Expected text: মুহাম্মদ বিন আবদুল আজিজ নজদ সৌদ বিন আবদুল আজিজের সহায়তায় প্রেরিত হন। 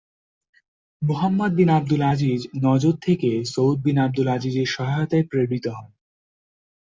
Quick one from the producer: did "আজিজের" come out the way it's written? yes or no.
yes